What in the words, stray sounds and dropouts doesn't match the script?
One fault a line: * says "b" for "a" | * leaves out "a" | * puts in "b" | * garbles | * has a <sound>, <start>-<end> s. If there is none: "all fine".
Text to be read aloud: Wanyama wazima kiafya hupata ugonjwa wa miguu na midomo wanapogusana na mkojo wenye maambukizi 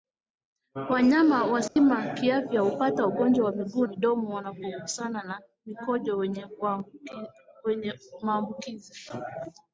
* has a dropout, 1.7-1.8 s
* leaves out "na"